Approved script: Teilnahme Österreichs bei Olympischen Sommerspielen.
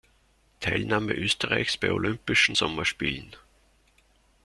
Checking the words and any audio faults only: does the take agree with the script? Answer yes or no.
yes